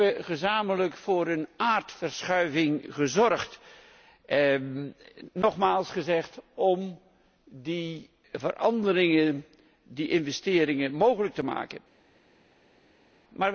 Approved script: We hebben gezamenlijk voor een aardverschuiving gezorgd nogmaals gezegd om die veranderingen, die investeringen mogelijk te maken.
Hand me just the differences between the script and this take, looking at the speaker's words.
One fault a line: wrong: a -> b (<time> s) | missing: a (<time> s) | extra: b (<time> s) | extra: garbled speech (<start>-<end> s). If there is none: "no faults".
no faults